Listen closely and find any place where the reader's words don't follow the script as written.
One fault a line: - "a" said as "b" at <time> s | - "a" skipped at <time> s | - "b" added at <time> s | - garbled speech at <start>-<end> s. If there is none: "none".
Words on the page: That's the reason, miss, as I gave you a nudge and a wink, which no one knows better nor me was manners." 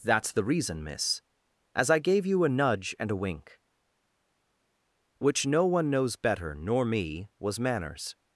none